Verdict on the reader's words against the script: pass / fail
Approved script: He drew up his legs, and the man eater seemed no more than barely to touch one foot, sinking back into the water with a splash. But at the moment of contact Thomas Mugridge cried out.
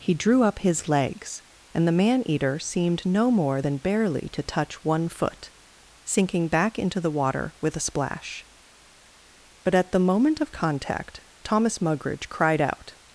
pass